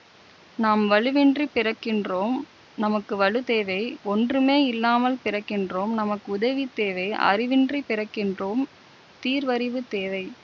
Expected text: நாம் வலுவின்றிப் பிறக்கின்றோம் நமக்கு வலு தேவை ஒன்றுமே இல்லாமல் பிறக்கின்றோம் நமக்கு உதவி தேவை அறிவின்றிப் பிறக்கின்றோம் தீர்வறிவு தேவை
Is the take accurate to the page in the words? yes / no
yes